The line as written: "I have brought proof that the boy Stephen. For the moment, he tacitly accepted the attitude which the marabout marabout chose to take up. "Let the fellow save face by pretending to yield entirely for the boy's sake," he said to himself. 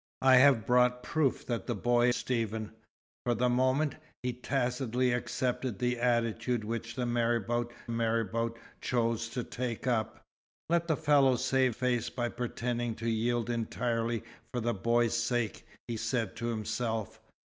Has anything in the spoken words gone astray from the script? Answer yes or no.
no